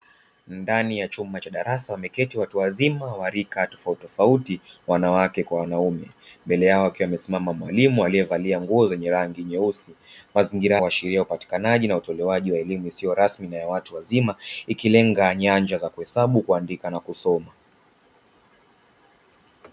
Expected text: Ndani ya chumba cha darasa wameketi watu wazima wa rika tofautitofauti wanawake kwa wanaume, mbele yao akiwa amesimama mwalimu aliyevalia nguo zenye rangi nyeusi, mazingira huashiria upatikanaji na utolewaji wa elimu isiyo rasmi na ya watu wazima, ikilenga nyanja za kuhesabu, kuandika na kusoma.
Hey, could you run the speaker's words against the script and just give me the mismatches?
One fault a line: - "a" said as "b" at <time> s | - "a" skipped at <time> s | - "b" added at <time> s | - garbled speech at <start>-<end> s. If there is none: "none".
none